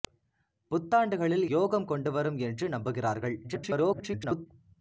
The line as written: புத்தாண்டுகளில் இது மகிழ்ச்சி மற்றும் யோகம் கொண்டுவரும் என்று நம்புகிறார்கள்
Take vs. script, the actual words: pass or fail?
fail